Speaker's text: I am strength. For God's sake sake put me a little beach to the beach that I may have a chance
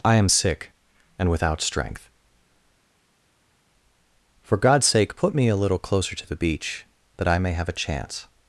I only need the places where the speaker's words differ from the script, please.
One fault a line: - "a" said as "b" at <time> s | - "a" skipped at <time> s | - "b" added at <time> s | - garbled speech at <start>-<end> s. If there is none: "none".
- "sick and without" added at 0.3 s
- "sake" skipped at 5.2 s
- "beach" said as "closer" at 5.8 s